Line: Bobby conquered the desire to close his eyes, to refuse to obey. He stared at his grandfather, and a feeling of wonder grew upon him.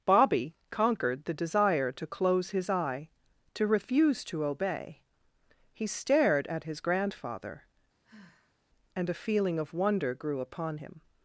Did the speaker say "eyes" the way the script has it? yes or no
no